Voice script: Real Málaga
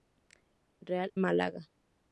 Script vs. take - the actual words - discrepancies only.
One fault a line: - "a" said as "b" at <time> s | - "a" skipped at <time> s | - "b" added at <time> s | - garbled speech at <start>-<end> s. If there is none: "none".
none